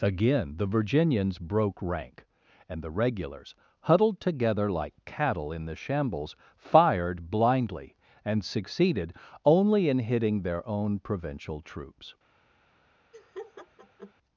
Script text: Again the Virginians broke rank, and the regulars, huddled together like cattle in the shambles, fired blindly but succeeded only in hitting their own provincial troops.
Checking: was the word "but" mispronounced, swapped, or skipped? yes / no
yes